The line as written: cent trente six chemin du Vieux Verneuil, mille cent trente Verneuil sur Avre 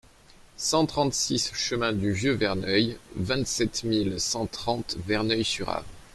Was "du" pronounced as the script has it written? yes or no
yes